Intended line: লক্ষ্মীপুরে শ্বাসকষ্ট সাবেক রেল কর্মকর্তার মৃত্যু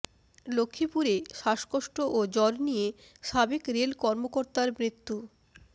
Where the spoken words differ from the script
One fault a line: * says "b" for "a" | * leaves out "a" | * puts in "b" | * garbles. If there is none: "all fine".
* puts in "ও জ্বর নিয়ে"